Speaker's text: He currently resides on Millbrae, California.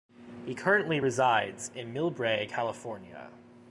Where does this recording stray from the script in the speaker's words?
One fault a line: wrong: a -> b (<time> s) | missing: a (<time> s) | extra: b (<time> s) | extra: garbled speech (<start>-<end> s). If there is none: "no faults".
wrong: on -> in (1.7 s)